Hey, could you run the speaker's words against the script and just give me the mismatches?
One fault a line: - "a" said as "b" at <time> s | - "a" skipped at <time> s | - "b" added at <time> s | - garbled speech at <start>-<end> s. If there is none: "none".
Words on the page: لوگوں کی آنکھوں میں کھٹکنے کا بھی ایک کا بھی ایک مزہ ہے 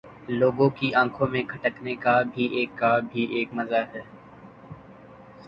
none